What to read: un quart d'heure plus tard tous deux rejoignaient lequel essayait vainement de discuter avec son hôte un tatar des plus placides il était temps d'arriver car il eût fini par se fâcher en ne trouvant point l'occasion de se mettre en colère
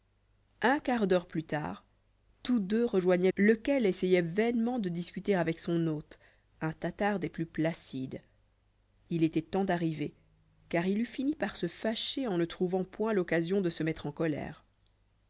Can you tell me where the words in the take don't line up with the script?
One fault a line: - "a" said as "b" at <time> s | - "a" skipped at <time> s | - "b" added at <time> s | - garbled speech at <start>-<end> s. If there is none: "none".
none